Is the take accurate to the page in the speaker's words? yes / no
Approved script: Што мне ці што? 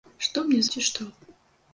yes